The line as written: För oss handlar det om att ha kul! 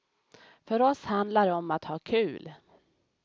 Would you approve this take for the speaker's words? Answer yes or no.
yes